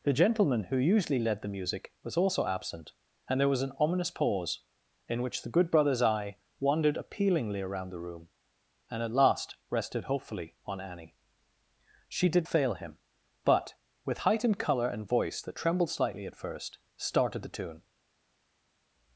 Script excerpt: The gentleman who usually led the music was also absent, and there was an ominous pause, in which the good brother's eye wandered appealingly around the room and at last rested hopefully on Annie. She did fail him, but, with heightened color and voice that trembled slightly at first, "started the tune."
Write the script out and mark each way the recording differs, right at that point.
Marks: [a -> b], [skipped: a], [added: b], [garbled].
The gentleman who usually led the music was also absent, and there was an ominous pause, in which the good brother's eye wandered appealingly around the room and at last rested hopefully on Annie. She did fail him, but, with heightened color and voice that trembled slightly at first, "started the tune."